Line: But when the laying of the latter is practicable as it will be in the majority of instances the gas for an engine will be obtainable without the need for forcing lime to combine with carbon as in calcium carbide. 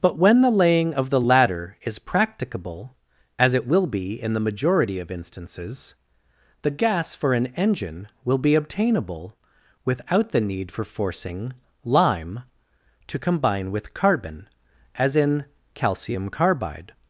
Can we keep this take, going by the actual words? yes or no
yes